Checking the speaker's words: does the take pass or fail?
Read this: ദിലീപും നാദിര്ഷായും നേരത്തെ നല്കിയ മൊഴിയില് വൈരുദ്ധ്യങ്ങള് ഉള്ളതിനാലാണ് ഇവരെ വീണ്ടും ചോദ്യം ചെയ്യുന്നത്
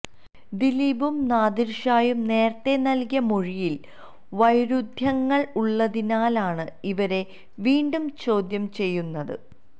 pass